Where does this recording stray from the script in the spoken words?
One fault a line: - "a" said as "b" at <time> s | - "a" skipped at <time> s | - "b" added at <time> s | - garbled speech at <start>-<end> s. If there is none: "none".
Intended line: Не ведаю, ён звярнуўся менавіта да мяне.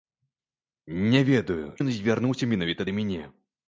none